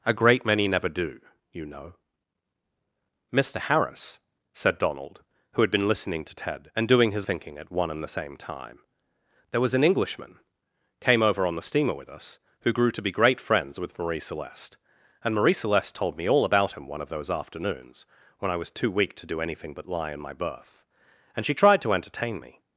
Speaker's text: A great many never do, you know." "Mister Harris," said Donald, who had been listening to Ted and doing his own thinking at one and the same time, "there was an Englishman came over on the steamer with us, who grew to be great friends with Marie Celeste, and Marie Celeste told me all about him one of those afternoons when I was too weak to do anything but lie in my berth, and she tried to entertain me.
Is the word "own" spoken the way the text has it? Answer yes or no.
no